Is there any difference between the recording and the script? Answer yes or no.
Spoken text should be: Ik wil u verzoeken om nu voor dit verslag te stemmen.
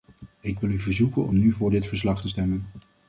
no